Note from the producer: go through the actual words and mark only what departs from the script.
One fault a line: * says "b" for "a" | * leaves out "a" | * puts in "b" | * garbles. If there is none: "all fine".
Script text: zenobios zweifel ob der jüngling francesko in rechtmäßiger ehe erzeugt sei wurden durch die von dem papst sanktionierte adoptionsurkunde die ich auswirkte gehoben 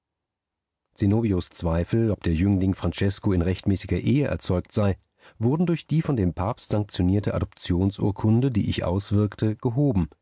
all fine